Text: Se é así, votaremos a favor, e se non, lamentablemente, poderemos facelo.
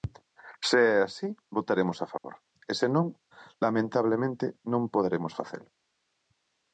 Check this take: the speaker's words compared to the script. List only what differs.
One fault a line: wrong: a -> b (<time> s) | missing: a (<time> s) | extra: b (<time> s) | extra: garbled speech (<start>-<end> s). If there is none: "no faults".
extra: non (4.7 s)